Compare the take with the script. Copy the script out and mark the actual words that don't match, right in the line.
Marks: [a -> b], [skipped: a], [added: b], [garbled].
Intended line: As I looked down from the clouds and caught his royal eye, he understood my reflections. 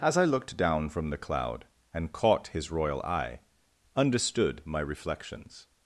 As I looked down from the [clouds -> cloud] and caught his royal eye, [skipped: he] understood my reflections.